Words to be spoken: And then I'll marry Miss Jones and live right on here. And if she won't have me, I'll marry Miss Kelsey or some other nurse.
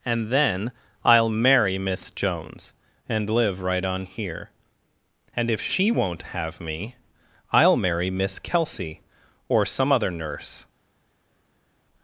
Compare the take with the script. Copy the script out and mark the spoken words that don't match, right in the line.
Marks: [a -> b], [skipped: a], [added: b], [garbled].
And then I'll marry Miss Jones and live right on here. And if she won't have me, I'll marry Miss Kelsey or some other nurse.